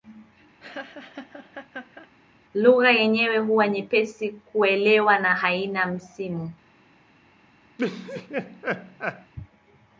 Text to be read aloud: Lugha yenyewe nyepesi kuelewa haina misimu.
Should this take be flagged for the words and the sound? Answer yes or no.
yes